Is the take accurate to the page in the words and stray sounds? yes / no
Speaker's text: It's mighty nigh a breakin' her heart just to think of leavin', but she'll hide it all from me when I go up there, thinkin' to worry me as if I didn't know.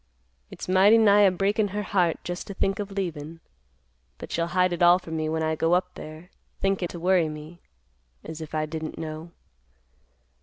yes